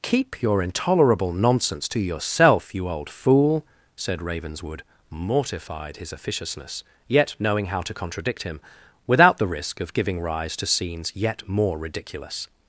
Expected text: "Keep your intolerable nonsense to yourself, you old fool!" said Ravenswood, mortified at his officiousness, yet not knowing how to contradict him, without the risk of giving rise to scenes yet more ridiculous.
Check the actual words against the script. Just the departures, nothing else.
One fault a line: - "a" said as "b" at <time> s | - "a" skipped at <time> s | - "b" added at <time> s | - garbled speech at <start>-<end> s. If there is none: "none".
- "at" skipped at 6.0 s
- "not" skipped at 7.3 s